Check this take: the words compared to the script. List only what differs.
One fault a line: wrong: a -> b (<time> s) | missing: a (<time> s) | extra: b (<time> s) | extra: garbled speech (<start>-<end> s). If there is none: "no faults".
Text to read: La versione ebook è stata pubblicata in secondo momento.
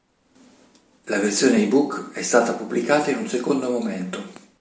extra: un (3.2 s)